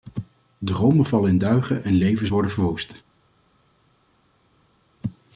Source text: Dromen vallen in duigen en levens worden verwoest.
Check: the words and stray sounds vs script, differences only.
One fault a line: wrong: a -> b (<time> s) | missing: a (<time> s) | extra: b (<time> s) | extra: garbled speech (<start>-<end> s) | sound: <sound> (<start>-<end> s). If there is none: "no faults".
no faults